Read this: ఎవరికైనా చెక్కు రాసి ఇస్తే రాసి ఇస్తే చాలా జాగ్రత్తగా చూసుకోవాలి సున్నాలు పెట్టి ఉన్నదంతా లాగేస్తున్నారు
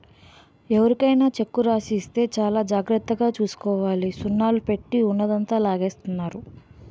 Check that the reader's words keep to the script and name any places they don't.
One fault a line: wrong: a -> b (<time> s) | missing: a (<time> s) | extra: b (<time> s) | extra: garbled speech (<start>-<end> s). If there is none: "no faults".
missing: రాసి ఇస్తే (2.2 s)